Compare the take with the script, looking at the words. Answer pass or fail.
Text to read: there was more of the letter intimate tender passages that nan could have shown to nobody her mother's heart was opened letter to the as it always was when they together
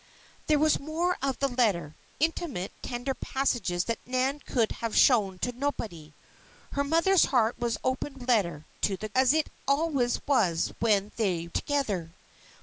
pass